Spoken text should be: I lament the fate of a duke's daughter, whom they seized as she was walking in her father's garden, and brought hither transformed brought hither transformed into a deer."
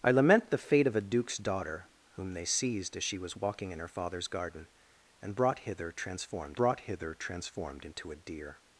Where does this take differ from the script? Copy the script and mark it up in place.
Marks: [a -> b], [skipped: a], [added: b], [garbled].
I lament the fate of a duke's daughter, whom they seized as she was walking in her father's garden, and brought hither transformed brought hither transformed into a deer."